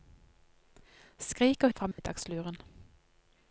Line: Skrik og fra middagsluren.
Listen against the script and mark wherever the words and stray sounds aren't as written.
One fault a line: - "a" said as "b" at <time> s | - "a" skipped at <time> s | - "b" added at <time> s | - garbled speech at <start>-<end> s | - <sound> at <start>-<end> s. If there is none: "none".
- dropout at 1.9-2.0 s